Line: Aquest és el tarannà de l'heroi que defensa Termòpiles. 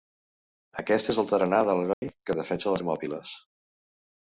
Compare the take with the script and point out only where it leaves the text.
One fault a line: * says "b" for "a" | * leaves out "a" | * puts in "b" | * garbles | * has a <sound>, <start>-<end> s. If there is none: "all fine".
* has a dropout, 1.9-2.0 s